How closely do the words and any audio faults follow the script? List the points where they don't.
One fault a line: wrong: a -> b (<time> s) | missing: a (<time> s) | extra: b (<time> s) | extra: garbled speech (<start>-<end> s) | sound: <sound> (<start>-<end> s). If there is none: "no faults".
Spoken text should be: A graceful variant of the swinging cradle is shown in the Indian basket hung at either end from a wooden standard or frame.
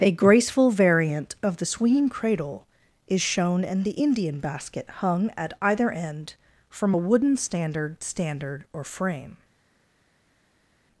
extra: standard (8.0 s)